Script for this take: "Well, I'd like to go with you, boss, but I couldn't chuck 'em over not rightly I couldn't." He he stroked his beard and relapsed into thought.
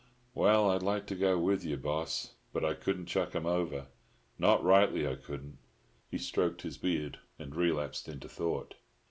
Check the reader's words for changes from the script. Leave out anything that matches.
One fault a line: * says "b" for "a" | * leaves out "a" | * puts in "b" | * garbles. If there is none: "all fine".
* leaves out "he"